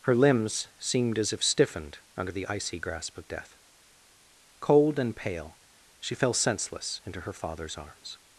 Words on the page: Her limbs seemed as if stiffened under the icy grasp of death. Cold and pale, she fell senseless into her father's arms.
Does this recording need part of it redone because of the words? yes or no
no